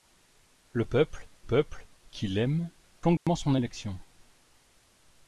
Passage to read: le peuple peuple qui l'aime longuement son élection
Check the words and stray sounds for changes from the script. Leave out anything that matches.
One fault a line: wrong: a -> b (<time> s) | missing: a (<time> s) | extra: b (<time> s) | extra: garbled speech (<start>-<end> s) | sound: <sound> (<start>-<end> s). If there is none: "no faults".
sound: dropout (3.2-3.3 s)